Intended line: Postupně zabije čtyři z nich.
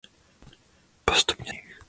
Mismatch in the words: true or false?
true